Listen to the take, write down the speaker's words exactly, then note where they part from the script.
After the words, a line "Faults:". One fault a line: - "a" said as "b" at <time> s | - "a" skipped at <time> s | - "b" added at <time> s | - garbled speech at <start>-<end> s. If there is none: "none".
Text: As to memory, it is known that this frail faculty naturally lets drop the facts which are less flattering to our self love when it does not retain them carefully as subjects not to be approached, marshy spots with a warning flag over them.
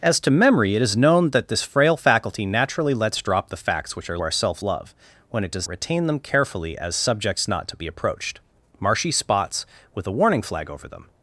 As to memory, it is known that this frail faculty naturally lets drop the facts which are our self love when it does retain them carefully as subjects not to be approached, marshy spots with a warning flag over them.
Faults:
- "less flattering to" skipped at 4.2 s
- "not" skipped at 5.7 s